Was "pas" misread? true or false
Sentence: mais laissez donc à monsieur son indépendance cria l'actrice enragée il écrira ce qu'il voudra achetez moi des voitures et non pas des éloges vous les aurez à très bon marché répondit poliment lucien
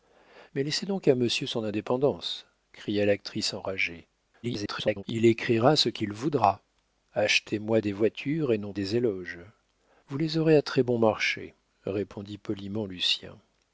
true